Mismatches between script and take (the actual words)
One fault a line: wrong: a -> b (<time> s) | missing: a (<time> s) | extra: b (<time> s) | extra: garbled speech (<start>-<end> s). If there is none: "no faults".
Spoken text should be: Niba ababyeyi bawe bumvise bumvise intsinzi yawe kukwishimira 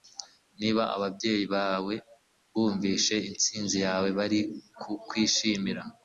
missing: bumvise (3.1 s)
extra: bari (4.2 s)